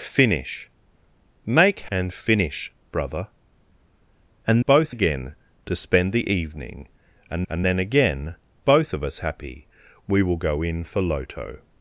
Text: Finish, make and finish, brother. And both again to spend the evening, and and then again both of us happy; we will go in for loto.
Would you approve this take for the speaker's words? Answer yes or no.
yes